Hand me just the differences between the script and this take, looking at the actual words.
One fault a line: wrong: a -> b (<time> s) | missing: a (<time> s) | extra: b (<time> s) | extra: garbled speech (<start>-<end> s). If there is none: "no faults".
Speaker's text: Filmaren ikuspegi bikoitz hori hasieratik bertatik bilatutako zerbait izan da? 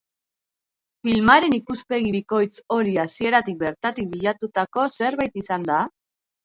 no faults